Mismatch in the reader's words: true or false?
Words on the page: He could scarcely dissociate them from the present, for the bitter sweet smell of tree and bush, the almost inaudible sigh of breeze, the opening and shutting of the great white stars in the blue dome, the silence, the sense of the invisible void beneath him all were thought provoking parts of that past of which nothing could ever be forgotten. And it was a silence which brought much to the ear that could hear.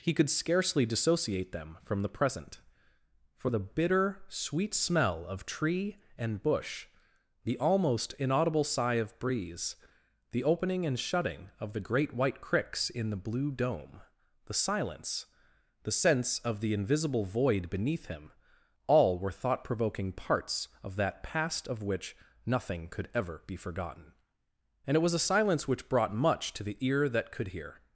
true